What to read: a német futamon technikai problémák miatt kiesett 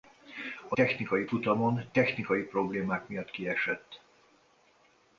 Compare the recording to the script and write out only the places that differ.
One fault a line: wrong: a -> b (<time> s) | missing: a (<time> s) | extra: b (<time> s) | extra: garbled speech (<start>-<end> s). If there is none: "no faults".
wrong: német -> technikai (0.7 s)